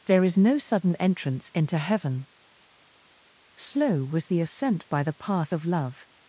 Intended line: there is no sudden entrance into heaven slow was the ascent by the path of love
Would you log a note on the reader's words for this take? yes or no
no